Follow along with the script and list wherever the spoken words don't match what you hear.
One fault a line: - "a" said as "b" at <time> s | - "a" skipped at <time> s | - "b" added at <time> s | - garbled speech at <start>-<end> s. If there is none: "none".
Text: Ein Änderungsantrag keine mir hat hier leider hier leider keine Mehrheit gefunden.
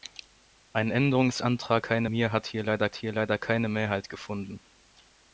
none